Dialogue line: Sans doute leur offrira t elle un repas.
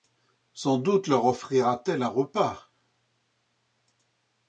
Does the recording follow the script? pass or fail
pass